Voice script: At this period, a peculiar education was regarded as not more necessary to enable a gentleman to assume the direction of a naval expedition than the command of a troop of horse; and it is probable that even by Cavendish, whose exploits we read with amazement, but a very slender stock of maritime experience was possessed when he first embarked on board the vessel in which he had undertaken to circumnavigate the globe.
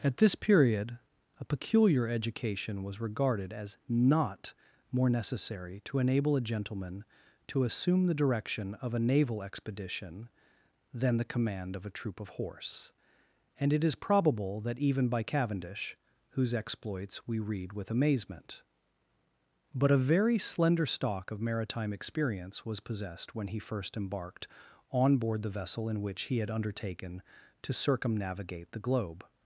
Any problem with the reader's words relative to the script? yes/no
no